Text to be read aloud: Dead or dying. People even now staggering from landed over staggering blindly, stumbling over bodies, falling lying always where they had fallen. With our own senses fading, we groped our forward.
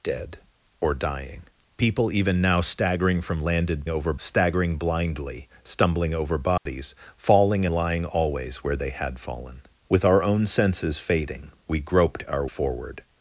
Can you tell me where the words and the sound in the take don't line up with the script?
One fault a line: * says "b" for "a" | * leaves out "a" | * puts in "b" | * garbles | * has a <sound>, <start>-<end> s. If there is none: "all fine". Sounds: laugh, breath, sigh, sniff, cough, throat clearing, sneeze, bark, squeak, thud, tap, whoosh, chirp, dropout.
* has a dropout, 6.6-6.7 s